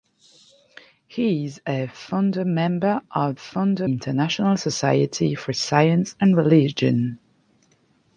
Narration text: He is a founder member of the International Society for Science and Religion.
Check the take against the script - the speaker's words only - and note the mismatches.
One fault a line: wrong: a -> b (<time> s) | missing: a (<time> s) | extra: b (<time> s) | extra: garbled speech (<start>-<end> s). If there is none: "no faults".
wrong: the -> founder (3.4 s)